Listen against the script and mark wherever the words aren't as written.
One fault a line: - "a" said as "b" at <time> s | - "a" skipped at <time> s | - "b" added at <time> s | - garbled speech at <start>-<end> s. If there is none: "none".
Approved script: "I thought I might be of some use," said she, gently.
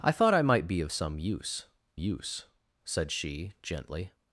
- "use" added at 2.0 s